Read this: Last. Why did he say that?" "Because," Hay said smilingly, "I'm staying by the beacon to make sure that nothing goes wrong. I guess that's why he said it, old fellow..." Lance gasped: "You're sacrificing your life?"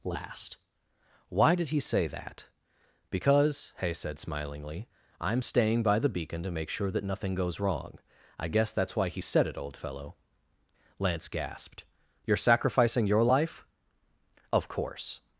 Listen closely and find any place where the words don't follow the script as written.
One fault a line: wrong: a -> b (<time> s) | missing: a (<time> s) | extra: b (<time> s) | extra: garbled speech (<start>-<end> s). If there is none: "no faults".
extra: Of course (14.5 s)